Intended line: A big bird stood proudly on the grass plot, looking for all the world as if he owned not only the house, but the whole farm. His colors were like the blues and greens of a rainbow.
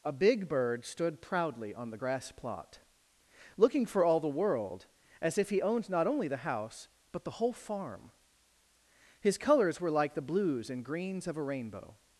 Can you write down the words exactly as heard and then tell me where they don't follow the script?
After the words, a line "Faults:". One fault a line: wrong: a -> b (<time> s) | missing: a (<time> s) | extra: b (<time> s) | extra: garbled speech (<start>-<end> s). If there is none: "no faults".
A big bird stood proudly on the grass plot, looking for all the world as if he owned not only the house, but the whole farm. His colors were like the blues and greens of a rainbow.
Faults:
no faults